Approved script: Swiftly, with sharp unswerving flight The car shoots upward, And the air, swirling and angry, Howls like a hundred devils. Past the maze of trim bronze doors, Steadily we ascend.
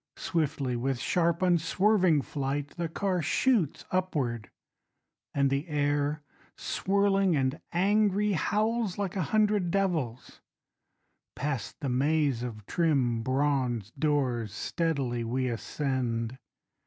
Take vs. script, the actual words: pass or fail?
pass